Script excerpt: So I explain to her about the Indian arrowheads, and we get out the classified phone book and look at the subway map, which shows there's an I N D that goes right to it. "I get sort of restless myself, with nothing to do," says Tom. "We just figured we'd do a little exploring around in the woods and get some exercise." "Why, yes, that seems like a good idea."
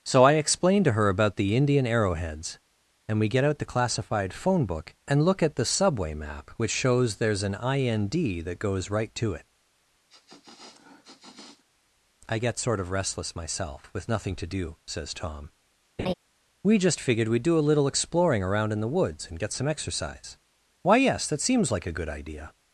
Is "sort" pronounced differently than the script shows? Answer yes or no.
no